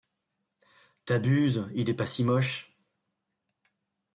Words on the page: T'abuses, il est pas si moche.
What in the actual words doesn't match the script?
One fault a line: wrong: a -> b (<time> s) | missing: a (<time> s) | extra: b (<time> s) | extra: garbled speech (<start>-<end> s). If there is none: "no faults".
no faults